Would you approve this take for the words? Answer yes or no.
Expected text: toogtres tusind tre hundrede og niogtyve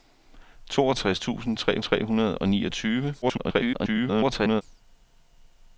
no